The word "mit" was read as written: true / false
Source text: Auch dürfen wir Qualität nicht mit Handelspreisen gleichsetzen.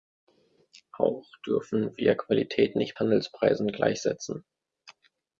false